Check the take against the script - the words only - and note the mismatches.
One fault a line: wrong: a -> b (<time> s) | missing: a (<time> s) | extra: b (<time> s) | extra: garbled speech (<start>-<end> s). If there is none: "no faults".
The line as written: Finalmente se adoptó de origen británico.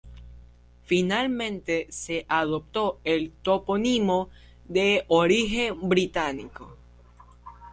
extra: el topónimo (3.0 s)